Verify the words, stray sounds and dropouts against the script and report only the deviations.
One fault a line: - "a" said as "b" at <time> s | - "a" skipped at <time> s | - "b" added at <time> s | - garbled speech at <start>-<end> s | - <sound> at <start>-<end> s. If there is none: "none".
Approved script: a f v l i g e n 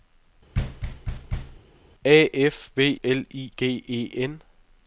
- thud at 0.5-1.6 s